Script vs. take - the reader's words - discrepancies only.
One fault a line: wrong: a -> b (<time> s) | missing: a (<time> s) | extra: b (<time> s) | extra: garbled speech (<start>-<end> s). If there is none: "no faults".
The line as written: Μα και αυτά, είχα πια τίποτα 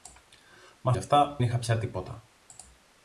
no faults